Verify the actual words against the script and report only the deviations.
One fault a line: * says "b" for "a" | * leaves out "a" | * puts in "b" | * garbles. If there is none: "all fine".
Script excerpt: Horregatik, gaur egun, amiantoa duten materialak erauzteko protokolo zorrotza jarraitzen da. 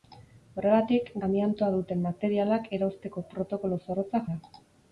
* leaves out "gaur egun"
* leaves out "jarraitzen"